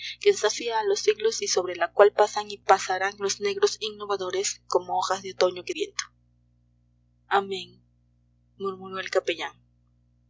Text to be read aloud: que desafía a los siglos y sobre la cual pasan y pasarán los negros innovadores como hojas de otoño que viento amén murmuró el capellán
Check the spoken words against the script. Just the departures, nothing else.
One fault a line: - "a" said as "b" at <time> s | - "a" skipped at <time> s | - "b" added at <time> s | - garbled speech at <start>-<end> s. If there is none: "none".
none